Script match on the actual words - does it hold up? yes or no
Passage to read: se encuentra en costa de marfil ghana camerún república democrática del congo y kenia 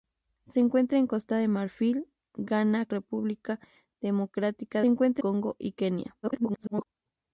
no